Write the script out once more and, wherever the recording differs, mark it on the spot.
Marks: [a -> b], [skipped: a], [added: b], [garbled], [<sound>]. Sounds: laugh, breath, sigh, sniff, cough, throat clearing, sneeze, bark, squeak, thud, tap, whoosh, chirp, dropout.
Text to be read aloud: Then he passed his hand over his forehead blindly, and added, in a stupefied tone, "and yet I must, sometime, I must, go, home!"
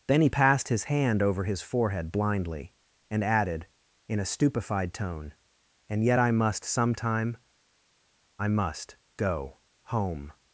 Then he passed his hand over his forehead blindly, and added, in a stupefied tone, "and yet I must, sometime, I must, go, home!"